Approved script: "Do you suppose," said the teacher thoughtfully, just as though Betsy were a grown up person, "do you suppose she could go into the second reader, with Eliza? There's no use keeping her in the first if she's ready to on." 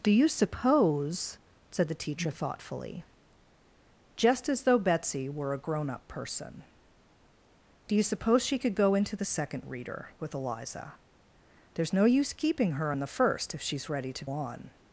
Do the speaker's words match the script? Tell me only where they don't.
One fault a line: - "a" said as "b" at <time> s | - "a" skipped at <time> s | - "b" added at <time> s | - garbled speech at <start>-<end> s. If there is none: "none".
none